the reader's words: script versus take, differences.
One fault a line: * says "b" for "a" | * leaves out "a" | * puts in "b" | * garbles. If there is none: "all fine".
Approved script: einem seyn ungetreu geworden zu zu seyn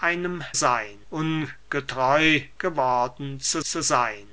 all fine